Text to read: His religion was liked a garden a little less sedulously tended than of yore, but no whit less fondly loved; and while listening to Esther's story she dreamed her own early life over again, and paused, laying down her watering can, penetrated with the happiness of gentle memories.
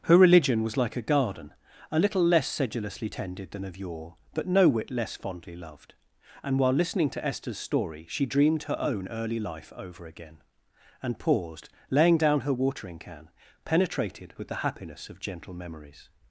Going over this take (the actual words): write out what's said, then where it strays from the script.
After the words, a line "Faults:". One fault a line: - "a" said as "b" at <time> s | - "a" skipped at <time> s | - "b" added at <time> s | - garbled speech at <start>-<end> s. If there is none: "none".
Her religion was like a garden a little less sedulously tended than of yore, but no whit less fondly loved; and while listening to Esther's story she dreamed her own early life over again, and paused, laying down her watering can, penetrated with the happiness of gentle memories.
Faults:
- "His" said as "Her" at 0.1 s
- "liked" said as "like" at 0.8 s